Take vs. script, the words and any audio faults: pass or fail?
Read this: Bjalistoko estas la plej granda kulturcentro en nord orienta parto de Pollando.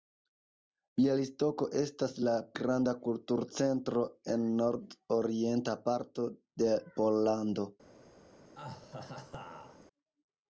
fail